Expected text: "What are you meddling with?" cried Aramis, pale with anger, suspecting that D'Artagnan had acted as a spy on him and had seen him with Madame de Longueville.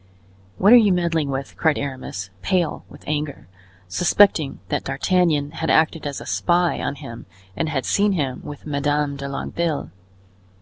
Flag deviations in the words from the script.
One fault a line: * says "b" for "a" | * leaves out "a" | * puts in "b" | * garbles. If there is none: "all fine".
all fine